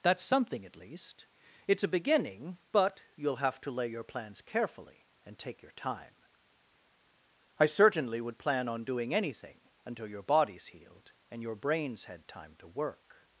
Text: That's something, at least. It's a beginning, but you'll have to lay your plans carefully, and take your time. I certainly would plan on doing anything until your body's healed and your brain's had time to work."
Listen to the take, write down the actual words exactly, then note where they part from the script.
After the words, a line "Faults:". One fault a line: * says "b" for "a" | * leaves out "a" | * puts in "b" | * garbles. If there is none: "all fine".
That's something, at least. It's a beginning, but you'll have to lay your plans carefully, and take your time. I certainly would plan on doing anything until your body's healed and your brain's had time to work."
Faults:
all fine